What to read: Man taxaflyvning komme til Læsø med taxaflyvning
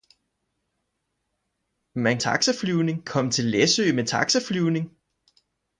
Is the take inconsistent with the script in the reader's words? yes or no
no